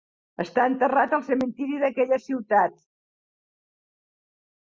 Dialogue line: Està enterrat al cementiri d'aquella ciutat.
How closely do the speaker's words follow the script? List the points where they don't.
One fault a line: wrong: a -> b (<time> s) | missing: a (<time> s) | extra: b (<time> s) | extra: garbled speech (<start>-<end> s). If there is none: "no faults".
no faults